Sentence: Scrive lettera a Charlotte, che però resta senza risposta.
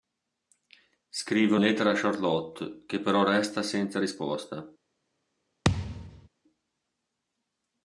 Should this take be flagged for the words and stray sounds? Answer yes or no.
yes